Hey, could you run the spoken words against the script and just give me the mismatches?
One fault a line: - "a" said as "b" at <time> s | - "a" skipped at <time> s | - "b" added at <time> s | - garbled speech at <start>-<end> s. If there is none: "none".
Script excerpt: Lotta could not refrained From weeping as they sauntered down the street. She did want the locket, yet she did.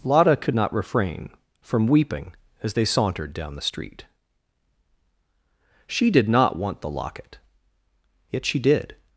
- "refrained" said as "refrain" at 0.7 s
- "not" added at 6.3 s